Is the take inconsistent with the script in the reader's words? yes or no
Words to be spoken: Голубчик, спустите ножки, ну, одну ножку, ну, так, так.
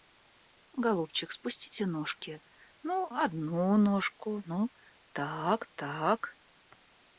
no